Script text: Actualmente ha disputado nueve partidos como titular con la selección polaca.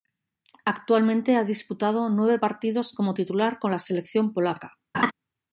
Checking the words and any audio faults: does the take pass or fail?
fail